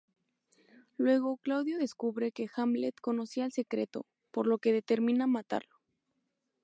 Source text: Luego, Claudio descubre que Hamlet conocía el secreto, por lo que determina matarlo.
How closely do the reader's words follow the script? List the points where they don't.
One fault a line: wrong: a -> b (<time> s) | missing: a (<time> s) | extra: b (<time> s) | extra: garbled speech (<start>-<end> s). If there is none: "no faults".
no faults